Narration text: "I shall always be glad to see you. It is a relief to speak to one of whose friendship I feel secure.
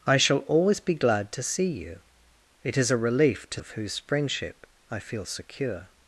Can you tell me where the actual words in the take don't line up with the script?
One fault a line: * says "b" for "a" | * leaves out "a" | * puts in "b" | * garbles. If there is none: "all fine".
* leaves out "speak to one"